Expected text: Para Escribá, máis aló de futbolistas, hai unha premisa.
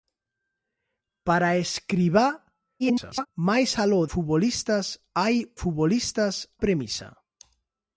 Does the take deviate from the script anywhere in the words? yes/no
yes